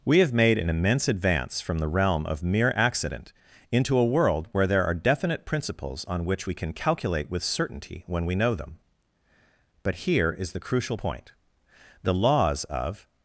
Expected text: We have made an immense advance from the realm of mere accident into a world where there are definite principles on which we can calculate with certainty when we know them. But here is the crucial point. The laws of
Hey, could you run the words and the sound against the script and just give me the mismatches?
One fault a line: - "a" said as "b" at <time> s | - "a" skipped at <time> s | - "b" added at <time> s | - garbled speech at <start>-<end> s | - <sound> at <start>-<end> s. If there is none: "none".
none